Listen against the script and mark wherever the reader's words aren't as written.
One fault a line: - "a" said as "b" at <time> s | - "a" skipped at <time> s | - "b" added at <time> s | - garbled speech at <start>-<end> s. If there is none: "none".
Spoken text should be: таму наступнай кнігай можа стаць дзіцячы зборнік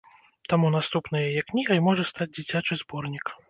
- "яе" added at 1.3 s